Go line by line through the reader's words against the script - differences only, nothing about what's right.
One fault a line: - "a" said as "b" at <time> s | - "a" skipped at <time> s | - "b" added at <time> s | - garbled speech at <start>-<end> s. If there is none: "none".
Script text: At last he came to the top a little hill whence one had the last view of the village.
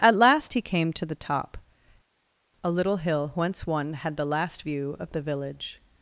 none